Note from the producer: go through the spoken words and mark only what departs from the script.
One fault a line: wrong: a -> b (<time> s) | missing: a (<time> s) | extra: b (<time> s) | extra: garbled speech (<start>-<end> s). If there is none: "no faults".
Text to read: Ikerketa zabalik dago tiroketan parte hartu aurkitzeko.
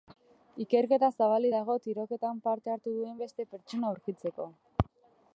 extra: duen beste pertsona (3.0 s)